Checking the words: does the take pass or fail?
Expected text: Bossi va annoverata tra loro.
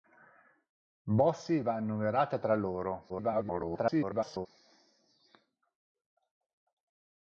fail